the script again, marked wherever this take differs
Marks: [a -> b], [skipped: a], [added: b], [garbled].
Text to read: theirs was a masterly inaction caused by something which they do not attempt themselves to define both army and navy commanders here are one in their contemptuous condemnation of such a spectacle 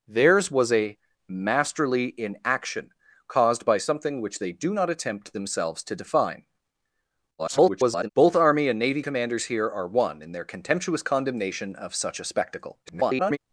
theirs was a masterly inaction caused by something which they do not attempt themselves to define [garbled] both army and navy commanders here are one in their contemptuous condemnation of such a spectacle [garbled]